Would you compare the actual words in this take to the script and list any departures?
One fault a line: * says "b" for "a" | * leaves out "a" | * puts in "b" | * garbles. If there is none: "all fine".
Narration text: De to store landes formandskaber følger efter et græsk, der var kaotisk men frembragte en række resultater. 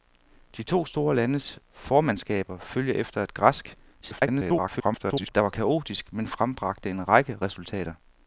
* garbles